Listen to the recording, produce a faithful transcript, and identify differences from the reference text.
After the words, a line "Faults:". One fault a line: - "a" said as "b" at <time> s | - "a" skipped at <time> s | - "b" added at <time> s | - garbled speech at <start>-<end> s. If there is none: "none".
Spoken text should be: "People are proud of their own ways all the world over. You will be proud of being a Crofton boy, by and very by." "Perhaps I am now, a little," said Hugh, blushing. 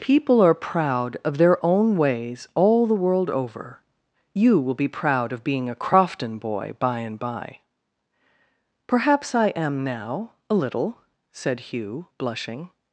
"People are proud of their own ways all the world over. You will be proud of being a Crofton boy, by and by." "Perhaps I am now, a little," said Hugh, blushing.
Faults:
- "very" skipped at 7.2 s